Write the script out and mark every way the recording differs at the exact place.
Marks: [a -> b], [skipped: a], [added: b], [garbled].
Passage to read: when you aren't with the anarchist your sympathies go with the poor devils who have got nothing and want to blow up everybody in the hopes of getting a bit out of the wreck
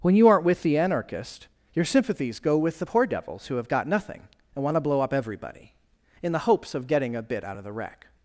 when you aren't with the anarchist your sympathies go with the poor devils who have got nothing and want to blow up everybody in the hopes of getting a bit out of the wreck